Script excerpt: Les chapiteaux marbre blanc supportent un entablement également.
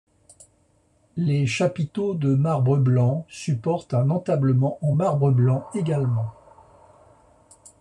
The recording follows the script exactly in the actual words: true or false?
false